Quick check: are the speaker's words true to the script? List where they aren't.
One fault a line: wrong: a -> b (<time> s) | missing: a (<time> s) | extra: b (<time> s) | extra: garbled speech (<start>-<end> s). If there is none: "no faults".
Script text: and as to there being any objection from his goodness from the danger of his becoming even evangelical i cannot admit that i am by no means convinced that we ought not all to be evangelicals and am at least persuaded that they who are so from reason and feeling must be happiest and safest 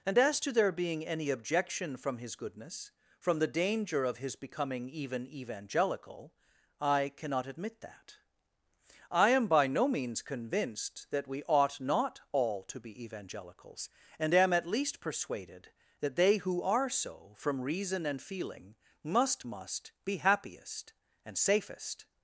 extra: must (19.4 s)